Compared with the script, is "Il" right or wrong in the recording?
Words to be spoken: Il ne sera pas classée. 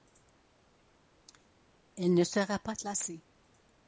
wrong